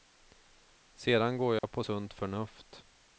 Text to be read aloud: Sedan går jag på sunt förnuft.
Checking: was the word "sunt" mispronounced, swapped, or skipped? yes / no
no